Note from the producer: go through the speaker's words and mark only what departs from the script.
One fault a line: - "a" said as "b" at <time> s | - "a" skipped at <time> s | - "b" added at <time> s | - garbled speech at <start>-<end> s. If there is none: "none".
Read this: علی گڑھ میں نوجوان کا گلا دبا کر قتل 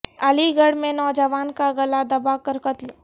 none